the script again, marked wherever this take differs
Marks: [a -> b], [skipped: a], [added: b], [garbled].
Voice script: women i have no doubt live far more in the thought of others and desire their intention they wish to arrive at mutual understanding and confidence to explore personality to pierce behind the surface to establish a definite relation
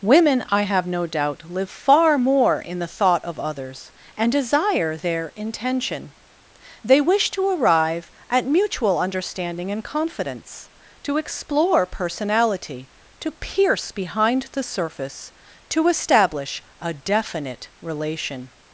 women i have no doubt live far more in the thought of others and desire their intention they wish to arrive at mutual understanding and confidence to explore personality to pierce behind the surface to establish a definite relation